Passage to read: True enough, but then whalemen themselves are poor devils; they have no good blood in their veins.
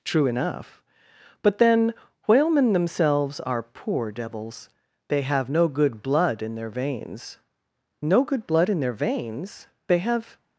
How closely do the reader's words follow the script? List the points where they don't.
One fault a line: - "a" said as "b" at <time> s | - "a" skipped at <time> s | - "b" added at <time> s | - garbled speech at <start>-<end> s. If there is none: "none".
- "No good blood in their veins They have" added at 8.0 s